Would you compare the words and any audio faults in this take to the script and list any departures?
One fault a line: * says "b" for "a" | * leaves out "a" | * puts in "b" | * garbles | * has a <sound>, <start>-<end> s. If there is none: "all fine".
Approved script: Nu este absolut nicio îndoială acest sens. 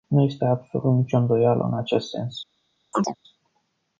* puts in "în"
* has a chirp, 2.9-3.2 s